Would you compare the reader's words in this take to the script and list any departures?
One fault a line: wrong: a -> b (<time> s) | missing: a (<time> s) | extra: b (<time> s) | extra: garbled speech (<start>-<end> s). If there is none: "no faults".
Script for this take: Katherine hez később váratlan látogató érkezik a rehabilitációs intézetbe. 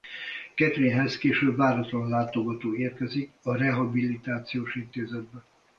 no faults